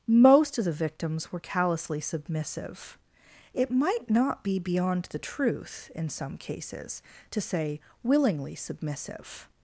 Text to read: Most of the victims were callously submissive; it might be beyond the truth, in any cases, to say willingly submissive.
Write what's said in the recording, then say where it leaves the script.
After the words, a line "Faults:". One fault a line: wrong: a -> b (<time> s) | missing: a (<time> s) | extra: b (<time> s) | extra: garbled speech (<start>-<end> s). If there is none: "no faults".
Most of the victims were callously submissive; it might not be beyond the truth, in some cases, to say willingly submissive.
Faults:
extra: not (4.1 s)
wrong: any -> some (6.1 s)